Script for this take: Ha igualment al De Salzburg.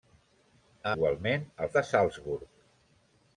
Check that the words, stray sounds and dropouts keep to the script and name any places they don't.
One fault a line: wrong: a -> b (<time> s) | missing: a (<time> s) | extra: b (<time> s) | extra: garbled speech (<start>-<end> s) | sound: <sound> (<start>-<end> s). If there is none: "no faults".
no faults